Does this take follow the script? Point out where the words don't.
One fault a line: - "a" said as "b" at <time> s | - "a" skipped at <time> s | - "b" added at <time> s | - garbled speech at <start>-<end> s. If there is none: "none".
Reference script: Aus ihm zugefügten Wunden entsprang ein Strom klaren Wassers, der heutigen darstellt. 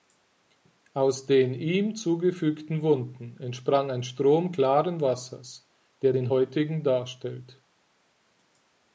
- "den" added at 1.3 s
- "den" added at 6.1 s